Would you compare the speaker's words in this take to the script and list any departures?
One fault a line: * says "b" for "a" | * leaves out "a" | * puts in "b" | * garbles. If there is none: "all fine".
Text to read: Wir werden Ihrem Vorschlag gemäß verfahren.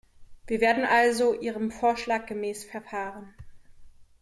* puts in "also"